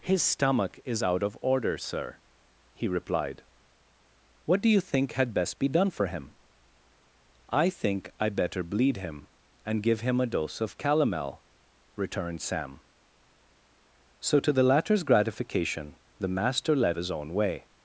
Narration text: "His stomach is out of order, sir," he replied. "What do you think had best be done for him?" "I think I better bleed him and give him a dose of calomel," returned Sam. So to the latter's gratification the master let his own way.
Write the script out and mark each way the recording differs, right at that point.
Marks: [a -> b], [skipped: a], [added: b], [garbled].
"His stomach is out of order, sir," he replied. "What do you think had best be done for him?" "I think I better bleed him and give him a dose of calomel," returned Sam. So to the latter's gratification the master let his own way.